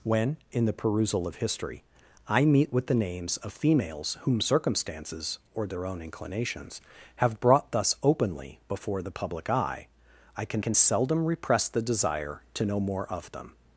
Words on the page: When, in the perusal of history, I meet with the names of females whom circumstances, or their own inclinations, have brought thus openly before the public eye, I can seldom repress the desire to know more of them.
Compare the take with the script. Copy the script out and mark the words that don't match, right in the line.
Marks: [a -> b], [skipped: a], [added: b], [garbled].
When, in the perusal of history, I meet with the names of females whom circumstances, or their own inclinations, have brought thus openly before the public eye, I can [added: can] seldom repress the desire to know more of them.